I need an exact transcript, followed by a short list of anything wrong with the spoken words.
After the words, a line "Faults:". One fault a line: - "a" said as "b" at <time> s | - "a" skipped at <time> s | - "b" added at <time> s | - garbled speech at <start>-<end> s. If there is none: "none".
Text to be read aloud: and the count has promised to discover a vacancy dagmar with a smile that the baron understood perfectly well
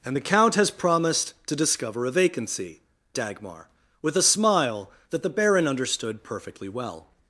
and the count has promised to discover a vacancy dagmar with a smile that the baron understood perfectly well
Faults:
none